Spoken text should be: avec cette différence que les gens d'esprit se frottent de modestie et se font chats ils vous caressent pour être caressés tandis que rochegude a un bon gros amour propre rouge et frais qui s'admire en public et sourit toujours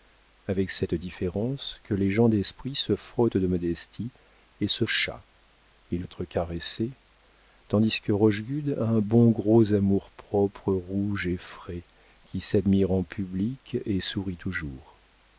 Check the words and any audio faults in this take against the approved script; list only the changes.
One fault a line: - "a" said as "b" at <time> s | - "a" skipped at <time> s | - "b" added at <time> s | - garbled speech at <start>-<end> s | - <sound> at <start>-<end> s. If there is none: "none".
- "font" skipped at 4.8 s
- "vous caressent pour" skipped at 6.0 s